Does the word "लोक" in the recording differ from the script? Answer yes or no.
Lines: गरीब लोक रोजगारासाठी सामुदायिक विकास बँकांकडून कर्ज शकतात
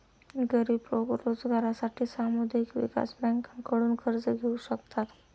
no